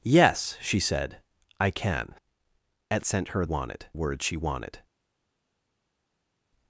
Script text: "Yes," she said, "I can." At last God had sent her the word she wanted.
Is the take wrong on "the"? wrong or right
wrong